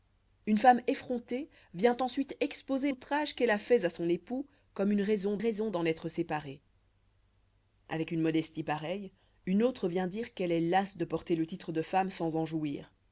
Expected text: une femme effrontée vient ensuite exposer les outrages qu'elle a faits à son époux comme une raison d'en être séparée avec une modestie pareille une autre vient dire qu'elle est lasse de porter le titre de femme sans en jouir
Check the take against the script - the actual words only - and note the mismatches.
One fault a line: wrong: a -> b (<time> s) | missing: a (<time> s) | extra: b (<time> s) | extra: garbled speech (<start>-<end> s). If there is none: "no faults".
missing: les (2.9 s)
extra: raison (5.4 s)